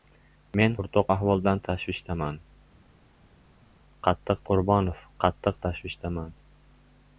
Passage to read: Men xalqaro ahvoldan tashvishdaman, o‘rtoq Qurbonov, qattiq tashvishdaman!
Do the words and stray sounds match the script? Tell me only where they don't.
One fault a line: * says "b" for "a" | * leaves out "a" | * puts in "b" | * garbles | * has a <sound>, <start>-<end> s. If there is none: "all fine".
* says "o‘rtoq" for "xalqaro"
* says "qattiq" for "o‘rtoq"